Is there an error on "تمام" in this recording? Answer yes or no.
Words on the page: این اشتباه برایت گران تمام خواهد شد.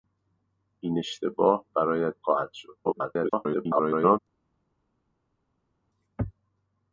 yes